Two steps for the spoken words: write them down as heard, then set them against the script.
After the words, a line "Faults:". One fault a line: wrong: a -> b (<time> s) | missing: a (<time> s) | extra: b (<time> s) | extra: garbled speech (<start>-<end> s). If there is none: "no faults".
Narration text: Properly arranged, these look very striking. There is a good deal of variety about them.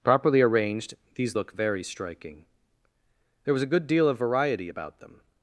Properly arranged, these look very striking. There was a good deal of variety about them.
Faults:
wrong: is -> was (3.5 s)